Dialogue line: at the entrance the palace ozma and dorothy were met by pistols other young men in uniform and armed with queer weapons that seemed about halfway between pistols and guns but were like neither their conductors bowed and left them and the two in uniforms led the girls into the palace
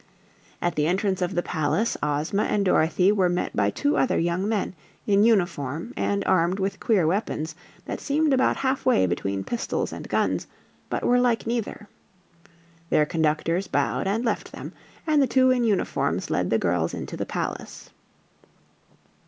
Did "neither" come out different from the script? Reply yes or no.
no